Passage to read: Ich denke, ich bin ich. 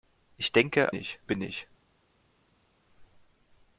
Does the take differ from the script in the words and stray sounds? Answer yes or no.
no